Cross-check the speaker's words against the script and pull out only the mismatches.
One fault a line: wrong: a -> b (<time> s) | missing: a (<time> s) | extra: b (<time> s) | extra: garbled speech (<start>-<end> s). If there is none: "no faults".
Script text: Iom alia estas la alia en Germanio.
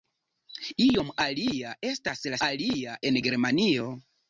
no faults